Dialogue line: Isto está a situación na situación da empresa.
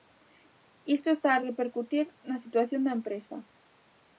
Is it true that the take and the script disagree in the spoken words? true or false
true